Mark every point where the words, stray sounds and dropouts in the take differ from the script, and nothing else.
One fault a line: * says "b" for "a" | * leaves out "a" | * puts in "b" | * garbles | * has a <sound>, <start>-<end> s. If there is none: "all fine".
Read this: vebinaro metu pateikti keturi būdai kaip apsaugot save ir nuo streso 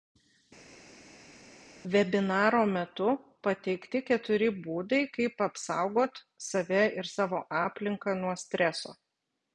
* puts in "savo aplinką"